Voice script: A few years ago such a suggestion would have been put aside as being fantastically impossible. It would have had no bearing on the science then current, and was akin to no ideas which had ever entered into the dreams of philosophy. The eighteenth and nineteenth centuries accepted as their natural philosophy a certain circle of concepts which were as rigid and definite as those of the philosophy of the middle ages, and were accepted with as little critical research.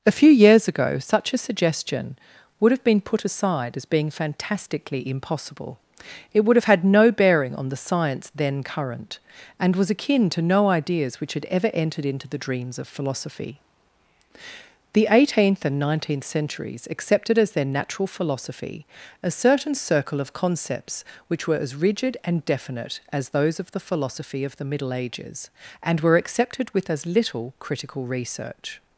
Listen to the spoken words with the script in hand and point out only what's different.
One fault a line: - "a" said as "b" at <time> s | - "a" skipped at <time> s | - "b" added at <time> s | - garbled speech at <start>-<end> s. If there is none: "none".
none